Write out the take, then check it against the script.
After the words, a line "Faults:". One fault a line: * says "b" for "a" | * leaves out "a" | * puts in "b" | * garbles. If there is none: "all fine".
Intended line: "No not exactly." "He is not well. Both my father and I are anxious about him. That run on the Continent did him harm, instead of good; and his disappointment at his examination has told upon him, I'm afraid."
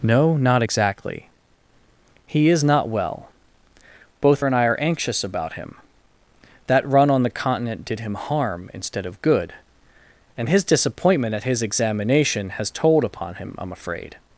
"No not exactly." "He is not well. Both and I are anxious about him. That run on the Continent did him harm, instead of good; and his disappointment at his examination has told upon him, I'm afraid."
Faults:
* leaves out "my father"